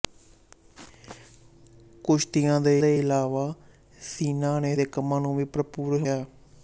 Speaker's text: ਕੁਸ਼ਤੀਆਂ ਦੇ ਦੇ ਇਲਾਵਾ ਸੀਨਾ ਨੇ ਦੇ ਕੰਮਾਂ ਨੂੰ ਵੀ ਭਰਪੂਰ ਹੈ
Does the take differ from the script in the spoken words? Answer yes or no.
no